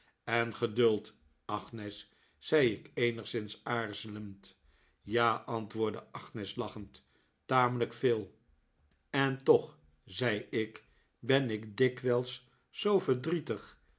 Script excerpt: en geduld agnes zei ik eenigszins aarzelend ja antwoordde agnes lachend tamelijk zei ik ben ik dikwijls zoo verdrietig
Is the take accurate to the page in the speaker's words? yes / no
no